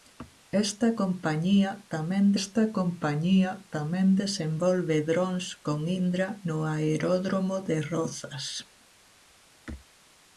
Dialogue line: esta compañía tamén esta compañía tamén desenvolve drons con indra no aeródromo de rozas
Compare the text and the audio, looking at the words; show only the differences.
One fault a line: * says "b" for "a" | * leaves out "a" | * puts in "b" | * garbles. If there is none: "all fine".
all fine